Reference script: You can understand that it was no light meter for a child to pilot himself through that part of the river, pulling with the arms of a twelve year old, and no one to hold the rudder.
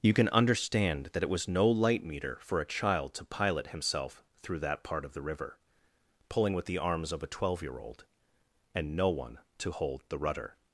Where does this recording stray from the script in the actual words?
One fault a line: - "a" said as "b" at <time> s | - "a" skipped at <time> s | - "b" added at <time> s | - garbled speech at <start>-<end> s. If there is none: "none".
none